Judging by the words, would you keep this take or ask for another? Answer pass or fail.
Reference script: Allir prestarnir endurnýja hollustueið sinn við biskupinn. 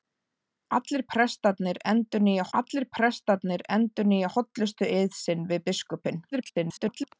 fail